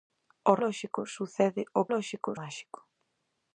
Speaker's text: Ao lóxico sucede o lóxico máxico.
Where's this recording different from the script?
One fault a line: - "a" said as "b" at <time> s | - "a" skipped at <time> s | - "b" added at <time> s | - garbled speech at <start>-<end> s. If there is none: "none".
none